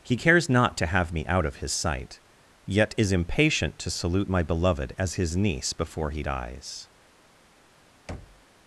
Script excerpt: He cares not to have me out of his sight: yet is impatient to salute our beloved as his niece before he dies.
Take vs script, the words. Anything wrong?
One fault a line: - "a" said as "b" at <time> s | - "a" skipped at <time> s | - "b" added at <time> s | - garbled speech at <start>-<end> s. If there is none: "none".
- "our" said as "my" at 4.3 s